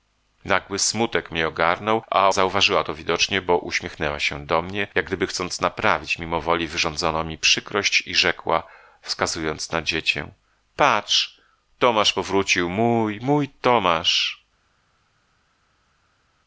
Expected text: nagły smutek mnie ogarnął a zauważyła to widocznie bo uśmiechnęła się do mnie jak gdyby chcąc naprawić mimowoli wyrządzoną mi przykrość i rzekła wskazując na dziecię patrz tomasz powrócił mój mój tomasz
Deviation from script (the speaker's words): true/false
false